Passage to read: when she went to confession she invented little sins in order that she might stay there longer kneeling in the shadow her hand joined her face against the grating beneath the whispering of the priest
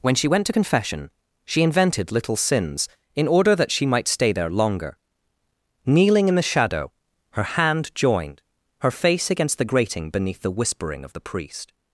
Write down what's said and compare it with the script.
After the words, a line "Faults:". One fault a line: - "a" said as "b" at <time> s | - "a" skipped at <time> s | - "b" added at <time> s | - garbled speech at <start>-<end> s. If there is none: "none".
when she went to confession she invented little sins in order that she might stay there longer kneeling in the shadow her hand joined her face against the grating beneath the whispering of the priest
Faults:
none